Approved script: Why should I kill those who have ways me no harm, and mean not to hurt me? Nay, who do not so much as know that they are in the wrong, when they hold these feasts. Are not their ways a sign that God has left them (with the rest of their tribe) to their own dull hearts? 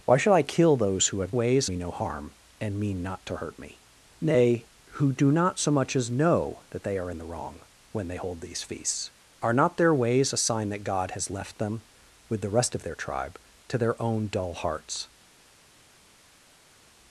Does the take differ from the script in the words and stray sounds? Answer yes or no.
no